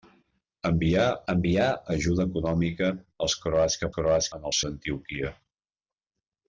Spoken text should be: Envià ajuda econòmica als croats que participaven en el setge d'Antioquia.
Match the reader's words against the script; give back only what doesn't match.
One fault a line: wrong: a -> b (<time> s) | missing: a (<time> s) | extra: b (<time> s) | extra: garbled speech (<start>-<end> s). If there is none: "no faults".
extra: envià (1.3 s)
wrong: participaven -> croats (4.0 s)
missing: setge (4.6 s)